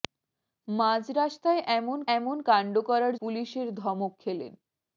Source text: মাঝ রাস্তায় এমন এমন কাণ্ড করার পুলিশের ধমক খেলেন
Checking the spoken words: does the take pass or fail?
pass